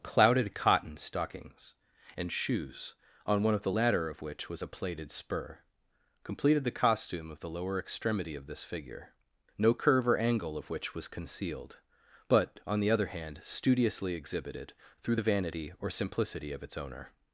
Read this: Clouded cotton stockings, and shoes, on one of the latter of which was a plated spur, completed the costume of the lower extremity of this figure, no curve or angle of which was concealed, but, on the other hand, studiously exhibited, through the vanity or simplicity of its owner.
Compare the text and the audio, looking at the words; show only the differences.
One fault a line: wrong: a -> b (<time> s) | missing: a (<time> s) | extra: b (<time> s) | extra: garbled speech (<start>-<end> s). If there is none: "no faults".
no faults